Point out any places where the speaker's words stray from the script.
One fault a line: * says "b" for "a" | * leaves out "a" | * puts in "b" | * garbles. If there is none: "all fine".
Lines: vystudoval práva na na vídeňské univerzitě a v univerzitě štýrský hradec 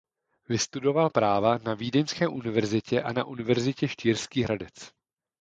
* leaves out "na"
* says "na" for "v"